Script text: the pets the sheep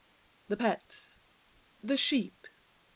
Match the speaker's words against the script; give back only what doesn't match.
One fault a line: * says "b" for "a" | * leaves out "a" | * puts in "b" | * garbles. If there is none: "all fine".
all fine